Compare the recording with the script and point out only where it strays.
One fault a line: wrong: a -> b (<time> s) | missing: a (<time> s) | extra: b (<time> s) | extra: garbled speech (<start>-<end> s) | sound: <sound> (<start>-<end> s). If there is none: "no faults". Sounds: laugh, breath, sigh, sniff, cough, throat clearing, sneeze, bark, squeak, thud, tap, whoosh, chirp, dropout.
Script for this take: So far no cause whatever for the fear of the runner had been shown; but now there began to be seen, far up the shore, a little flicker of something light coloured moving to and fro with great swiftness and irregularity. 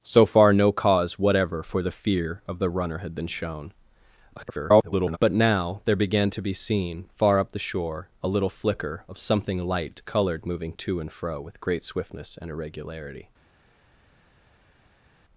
extra: garbled speech (4.4-5.2 s)